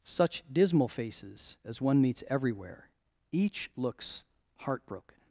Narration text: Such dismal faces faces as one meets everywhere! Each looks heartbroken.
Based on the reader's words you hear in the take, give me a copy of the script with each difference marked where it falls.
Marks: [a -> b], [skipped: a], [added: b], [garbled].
Such dismal faces [skipped: faces] as one meets everywhere! Each looks heartbroken.